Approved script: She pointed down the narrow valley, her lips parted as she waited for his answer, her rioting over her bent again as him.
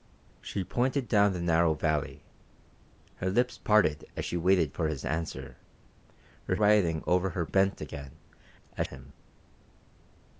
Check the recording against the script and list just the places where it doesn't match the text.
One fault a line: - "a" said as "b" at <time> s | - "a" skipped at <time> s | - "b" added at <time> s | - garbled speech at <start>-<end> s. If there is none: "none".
none